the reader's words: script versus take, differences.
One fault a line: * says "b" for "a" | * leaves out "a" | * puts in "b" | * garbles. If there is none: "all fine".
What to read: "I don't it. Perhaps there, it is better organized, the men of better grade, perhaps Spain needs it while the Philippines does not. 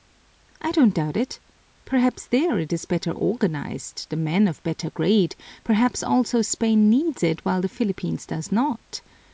* puts in "doubt"
* puts in "also"